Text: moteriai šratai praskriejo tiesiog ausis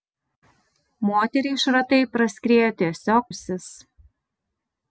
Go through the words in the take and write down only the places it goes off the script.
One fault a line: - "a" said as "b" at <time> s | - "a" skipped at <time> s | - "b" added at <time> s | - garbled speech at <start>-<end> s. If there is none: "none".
none